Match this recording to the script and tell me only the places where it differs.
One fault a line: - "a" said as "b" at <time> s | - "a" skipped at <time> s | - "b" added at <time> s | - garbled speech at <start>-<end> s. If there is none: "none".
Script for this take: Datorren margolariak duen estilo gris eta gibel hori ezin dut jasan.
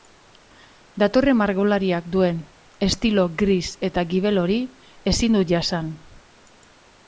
none